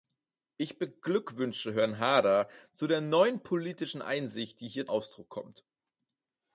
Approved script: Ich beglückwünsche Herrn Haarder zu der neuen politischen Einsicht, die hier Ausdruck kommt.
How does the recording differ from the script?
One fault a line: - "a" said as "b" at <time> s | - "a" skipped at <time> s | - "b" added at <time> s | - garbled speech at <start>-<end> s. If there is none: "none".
none